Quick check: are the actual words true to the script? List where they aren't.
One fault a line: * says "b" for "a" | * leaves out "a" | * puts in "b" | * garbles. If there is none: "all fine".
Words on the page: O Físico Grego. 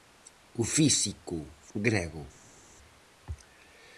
all fine